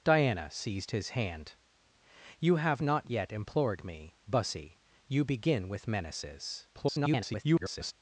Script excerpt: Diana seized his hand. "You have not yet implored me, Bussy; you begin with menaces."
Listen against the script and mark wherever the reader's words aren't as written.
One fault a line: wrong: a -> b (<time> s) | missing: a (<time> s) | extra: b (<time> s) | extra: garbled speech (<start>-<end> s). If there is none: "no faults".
extra: garbled speech (6.7-7.9 s)